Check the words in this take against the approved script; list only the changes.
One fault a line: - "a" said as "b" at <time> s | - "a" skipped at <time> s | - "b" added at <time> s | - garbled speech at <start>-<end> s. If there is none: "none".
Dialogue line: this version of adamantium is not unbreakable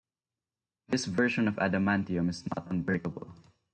none